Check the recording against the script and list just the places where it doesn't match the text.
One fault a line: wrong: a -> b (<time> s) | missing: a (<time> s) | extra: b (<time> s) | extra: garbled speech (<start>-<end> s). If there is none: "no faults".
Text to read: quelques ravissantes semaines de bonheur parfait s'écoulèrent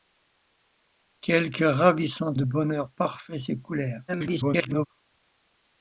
missing: semaines (2.4 s)
extra: garbled speech (4.1-4.9 s)